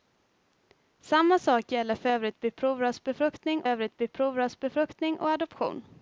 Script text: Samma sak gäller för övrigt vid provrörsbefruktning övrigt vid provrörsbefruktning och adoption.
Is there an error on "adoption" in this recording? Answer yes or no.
no